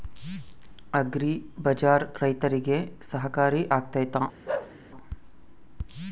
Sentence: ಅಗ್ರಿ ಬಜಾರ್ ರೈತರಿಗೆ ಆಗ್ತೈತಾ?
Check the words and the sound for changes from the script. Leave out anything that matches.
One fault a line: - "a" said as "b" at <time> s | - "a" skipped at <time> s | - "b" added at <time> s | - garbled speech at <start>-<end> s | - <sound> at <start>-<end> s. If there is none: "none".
- "ಸಹಕಾರಿ" added at 3.1 s
- bark at 4.5-4.8 s